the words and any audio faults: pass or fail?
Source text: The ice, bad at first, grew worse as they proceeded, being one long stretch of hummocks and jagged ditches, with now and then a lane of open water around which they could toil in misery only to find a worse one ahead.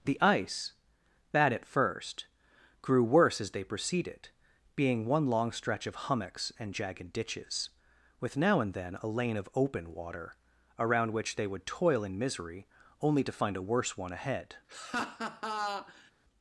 fail